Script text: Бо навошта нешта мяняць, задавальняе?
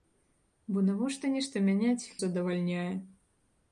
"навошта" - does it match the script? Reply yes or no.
yes